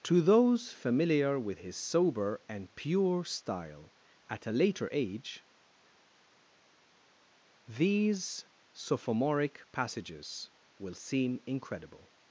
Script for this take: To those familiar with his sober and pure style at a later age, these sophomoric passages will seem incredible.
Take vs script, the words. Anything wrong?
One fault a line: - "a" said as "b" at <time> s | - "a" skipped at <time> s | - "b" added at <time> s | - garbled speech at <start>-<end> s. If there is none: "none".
none